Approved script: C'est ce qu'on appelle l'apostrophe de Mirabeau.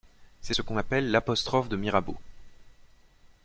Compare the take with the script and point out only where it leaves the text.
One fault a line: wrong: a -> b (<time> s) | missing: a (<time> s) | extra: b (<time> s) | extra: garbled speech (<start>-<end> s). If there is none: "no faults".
no faults